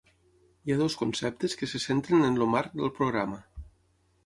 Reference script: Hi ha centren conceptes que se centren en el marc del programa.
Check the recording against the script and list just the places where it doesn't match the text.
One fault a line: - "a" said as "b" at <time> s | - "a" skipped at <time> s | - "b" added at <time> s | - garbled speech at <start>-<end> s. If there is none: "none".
- "centren" said as "dos" at 0.8 s